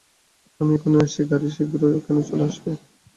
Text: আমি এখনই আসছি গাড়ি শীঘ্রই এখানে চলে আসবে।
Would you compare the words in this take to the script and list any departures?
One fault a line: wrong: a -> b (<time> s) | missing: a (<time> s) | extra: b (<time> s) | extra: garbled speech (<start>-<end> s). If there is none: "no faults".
no faults